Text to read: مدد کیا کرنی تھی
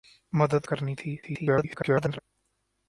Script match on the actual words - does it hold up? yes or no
no